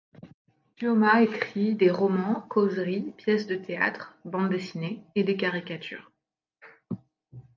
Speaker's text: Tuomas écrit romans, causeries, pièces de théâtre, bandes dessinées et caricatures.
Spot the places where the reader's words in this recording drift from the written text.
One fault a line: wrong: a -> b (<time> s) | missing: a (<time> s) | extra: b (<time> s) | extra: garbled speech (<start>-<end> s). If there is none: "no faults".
extra: des (1.8 s)
extra: des (5.2 s)